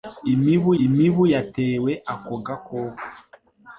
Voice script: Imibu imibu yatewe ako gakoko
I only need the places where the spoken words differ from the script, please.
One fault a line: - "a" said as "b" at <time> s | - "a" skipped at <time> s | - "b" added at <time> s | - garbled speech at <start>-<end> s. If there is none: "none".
none